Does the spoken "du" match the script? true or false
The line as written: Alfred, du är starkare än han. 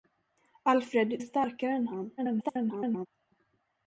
false